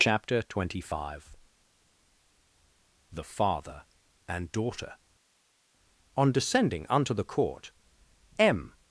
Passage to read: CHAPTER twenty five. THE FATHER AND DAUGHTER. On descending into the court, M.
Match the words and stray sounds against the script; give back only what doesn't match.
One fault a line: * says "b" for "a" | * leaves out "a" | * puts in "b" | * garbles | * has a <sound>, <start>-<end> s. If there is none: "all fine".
* says "unto" for "into"